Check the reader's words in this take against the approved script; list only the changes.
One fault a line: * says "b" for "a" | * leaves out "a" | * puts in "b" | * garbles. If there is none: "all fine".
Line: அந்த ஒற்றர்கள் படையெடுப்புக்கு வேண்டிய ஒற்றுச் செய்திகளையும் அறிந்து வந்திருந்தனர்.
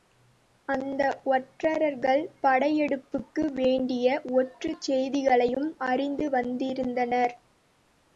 all fine